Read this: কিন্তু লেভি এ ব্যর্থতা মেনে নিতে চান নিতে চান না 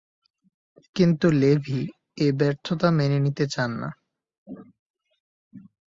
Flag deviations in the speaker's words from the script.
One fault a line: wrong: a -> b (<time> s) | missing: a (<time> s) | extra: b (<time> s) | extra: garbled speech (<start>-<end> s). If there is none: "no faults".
missing: নিতে চান (3.7 s)